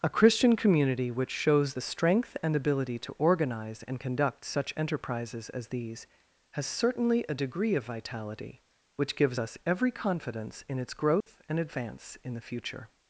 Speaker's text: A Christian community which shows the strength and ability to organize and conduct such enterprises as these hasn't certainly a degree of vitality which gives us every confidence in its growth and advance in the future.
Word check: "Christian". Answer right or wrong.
right